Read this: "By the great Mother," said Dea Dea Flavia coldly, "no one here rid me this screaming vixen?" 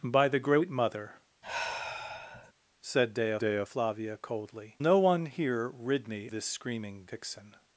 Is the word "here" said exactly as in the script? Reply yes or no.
yes